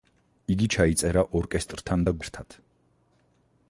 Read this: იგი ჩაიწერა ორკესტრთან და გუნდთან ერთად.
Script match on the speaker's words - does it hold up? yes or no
no